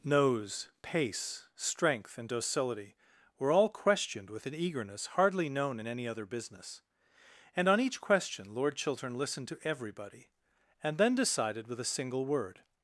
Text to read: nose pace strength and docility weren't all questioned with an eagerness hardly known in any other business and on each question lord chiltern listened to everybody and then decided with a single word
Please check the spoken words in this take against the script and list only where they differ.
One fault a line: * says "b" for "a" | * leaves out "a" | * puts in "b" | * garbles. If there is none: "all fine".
* says "were" for "weren't"